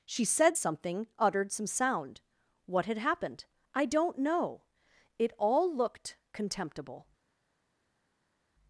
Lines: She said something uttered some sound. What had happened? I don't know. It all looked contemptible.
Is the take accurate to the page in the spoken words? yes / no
yes